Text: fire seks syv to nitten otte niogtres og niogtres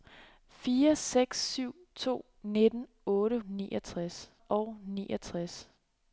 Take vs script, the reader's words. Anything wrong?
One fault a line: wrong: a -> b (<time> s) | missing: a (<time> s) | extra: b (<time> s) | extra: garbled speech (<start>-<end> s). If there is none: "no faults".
no faults